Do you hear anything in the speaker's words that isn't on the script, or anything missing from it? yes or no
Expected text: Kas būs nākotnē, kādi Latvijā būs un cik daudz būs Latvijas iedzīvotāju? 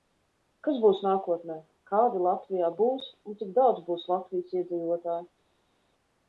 no